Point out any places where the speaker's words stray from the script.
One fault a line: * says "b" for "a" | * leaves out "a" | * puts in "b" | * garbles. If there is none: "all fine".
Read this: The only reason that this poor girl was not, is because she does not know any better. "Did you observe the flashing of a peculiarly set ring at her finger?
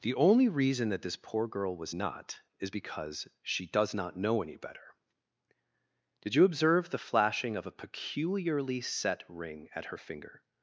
all fine